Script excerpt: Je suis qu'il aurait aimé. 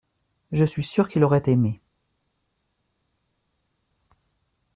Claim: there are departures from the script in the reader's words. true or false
true